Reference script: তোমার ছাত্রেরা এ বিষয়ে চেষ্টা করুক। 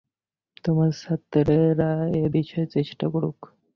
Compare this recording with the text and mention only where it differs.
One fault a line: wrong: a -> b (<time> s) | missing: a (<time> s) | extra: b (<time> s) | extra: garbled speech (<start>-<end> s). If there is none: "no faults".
no faults